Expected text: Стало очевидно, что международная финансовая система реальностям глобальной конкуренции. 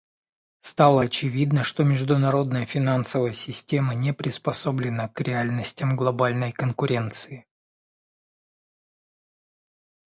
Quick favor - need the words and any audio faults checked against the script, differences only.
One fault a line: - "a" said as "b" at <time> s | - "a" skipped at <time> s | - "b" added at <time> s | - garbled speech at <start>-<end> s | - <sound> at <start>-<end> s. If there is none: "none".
- "не приспособлена к" added at 3.9 s